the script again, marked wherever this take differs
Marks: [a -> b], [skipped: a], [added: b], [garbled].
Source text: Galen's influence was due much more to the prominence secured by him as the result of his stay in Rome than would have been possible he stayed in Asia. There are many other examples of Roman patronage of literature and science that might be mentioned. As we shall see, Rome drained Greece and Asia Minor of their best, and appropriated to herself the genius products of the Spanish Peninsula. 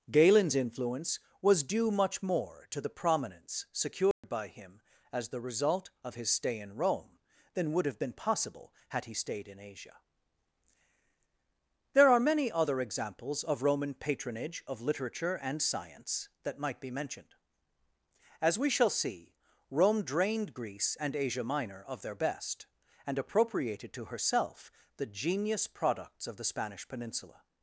Galen's influence was due much more to the prominence secured by him as the result of his stay in Rome than would have been possible [added: had] he stayed in Asia. There are many other examples of Roman patronage of literature and science that might be mentioned. As we shall see, Rome drained Greece and Asia Minor of their best, and appropriated to herself the genius products of the Spanish Peninsula.